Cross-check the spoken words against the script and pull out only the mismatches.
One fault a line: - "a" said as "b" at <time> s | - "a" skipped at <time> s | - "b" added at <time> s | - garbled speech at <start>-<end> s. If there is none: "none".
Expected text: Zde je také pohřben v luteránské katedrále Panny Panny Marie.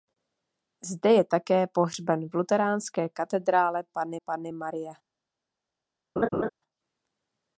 none